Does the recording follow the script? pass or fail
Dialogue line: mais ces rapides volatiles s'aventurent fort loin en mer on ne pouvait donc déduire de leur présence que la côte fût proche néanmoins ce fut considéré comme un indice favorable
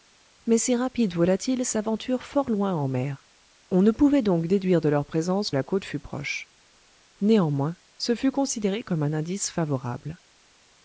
fail